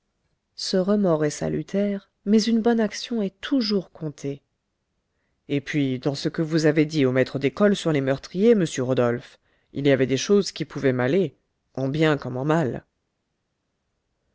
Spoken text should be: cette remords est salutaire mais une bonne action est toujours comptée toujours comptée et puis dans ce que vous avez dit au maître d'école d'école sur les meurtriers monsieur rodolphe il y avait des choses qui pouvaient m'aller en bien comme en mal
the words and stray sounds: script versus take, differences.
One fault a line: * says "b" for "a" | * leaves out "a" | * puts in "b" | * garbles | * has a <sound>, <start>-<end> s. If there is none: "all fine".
* says "ce" for "cette"
* leaves out "toujours comptée"
* leaves out "d'école"